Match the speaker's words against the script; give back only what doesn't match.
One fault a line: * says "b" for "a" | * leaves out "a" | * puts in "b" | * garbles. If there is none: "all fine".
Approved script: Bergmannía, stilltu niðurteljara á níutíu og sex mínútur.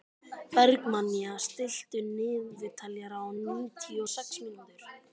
all fine